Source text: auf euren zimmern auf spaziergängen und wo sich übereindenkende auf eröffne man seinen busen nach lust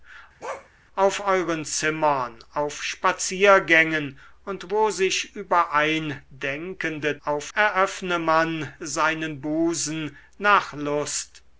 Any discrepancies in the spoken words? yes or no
no